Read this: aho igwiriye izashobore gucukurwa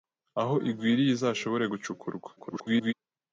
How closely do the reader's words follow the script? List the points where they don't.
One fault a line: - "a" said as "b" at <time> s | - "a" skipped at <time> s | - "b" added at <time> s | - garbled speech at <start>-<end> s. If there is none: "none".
- garbled speech at 2.4-2.9 s